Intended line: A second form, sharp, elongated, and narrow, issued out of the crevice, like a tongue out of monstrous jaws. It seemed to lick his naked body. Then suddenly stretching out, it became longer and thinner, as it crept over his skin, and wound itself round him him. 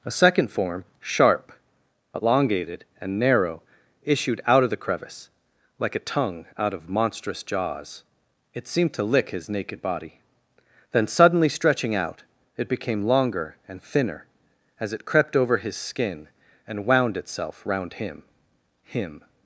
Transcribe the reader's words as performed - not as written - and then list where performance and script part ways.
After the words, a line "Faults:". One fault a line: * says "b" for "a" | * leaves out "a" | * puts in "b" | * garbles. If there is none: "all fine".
A second form, sharp, elongated, and narrow, issued out of the crevice, like a tongue out of monstrous jaws. It seemed to lick his naked body. Then suddenly stretching out, it became longer and thinner, as it crept over his skin, and wound itself round him him.
Faults:
all fine